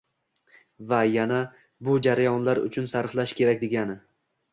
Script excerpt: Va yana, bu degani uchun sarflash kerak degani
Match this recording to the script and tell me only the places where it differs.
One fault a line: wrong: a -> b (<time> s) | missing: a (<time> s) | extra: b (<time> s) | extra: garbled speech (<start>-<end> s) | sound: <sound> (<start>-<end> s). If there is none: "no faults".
wrong: degani -> jarayonlar (2.0 s)